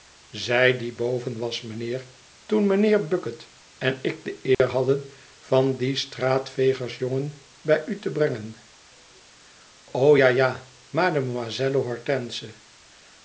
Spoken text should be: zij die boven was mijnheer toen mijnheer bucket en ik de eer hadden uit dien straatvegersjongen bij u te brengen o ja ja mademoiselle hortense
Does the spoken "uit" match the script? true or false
false